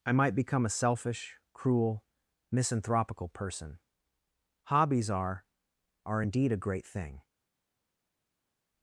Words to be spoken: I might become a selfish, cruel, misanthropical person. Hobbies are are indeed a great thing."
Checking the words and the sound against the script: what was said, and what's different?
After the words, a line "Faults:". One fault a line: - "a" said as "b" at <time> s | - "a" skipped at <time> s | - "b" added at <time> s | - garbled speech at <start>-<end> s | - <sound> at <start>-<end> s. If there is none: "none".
I might become a selfish, cruel, misanthropical person. Hobbies are are indeed a great thing."
Faults:
none